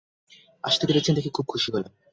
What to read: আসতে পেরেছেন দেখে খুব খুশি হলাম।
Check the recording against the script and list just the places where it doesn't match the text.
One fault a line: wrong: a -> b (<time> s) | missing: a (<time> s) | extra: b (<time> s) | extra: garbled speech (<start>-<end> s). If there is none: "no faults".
no faults